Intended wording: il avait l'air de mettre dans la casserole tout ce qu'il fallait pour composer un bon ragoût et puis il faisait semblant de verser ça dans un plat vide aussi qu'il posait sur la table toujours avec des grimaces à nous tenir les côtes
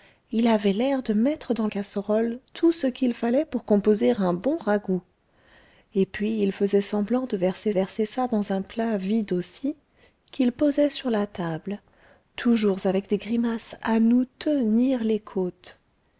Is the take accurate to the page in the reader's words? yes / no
no